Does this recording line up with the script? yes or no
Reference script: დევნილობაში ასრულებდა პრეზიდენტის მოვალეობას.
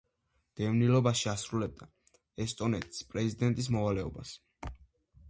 no